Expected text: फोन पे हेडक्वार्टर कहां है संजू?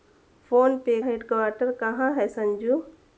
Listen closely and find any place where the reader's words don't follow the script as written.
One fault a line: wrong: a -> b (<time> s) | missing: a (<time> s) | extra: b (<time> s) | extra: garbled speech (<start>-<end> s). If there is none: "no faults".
no faults